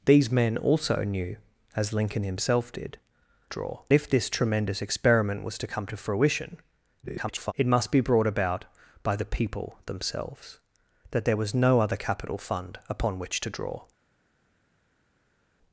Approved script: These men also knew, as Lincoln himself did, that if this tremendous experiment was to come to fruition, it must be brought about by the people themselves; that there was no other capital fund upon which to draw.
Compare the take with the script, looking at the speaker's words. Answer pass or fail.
fail